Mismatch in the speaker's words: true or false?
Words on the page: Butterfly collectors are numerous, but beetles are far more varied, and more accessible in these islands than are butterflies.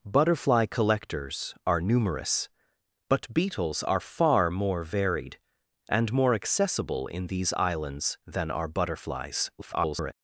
true